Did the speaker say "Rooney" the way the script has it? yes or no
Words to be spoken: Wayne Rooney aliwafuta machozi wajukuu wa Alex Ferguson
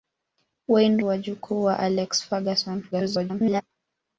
no